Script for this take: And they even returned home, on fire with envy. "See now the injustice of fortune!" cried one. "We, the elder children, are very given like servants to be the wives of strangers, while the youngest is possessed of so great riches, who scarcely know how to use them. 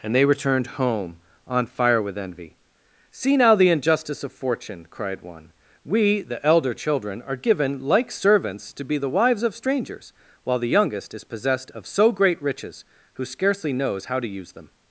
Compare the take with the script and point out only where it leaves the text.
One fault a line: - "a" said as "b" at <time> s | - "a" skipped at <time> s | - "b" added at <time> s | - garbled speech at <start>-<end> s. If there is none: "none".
- "even" skipped at 0.2 s
- "very" skipped at 7.3 s
- "know" said as "knows" at 13.7 s